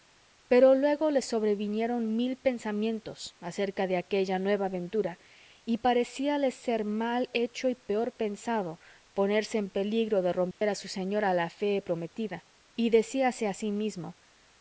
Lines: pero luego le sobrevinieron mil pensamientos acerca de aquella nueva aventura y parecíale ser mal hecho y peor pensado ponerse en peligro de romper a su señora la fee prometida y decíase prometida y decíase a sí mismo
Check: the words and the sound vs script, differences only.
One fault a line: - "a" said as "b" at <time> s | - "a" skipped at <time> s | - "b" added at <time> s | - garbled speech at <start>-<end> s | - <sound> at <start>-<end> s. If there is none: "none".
- dropout at 10.5-10.6 s
- "prometida y decíase" skipped at 13.4 s